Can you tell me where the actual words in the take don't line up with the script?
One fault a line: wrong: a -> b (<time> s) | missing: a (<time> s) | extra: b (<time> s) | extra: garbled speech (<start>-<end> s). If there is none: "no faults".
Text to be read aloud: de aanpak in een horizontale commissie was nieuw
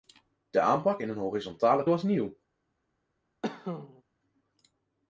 missing: commissie (1.9 s)